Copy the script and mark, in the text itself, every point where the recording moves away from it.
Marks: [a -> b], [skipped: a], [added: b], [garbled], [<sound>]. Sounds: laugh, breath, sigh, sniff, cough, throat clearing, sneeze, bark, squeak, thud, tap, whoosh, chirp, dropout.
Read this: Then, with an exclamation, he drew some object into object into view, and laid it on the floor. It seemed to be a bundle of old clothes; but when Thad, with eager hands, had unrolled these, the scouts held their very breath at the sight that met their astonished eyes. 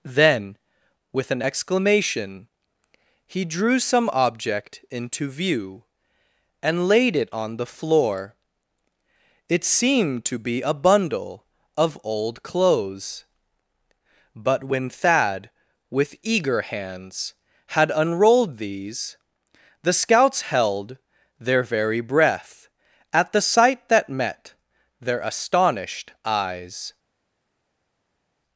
Then, with an exclamation, he drew some object into [skipped: object into] view, and laid it on the floor. It seemed to be a bundle of old clothes; but when Thad, with eager hands, had unrolled these, the scouts held their very breath at the sight that met their astonished eyes.